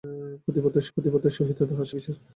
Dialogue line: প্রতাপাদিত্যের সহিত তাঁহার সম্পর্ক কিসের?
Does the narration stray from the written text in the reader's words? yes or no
yes